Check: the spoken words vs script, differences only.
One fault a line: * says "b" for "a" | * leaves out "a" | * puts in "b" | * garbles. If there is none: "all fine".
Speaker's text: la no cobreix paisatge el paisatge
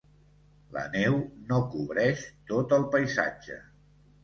* puts in "neu"
* says "tot" for "paisatge"